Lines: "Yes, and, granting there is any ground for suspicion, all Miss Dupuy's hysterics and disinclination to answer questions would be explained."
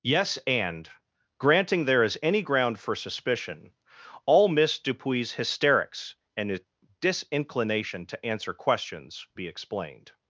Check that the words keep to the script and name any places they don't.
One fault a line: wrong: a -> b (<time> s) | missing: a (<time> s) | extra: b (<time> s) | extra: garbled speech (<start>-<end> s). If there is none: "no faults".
missing: would (9.3 s)